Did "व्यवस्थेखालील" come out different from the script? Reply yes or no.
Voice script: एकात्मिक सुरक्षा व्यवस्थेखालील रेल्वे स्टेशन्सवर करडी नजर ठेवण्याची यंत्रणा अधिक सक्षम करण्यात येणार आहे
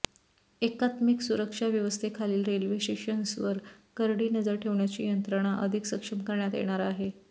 no